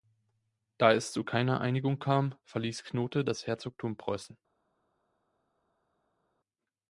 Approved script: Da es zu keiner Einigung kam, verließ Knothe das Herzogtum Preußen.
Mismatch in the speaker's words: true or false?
false